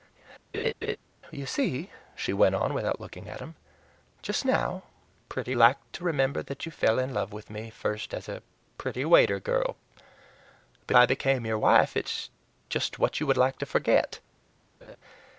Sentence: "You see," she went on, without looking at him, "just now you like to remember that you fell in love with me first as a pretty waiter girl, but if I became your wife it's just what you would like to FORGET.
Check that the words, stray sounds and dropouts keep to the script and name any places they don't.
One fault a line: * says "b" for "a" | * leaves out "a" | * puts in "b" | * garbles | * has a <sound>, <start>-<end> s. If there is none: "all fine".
* has a laugh, 0.5-1.0 s
* says "pretty" for "you"
* leaves out "if"
* has a laugh, 14.8-15.0 s